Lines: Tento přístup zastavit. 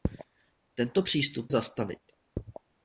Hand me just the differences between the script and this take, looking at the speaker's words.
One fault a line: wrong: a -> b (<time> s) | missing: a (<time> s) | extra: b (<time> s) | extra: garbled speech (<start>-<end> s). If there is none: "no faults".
no faults